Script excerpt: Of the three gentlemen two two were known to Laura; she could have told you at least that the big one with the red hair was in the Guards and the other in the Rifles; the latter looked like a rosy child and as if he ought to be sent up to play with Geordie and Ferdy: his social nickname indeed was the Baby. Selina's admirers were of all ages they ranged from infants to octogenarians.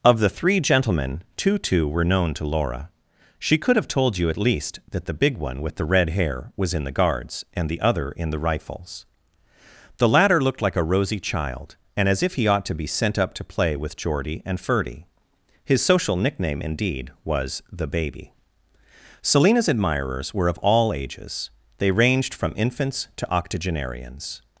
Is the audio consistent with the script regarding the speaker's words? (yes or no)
yes